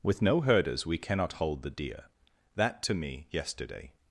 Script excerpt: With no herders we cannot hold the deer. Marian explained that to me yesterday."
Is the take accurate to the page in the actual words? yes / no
no